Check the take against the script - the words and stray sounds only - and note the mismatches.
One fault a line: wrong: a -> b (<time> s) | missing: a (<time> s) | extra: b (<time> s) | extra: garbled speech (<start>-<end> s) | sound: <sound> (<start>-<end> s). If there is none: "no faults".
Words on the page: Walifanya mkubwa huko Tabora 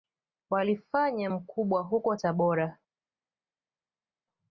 no faults